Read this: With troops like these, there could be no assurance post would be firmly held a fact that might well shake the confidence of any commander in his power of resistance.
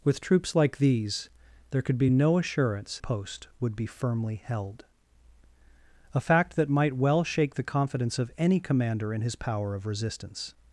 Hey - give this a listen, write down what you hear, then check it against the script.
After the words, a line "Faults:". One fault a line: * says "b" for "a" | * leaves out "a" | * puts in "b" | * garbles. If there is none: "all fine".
With troops like these, there could be no assurance post would be firmly held a fact that might well shake the confidence of any commander in his power of resistance.
Faults:
all fine